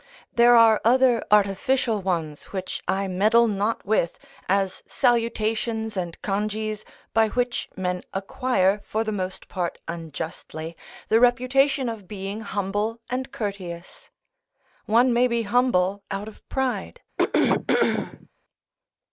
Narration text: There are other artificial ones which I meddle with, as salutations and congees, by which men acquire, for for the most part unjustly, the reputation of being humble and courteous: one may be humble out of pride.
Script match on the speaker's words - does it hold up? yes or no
no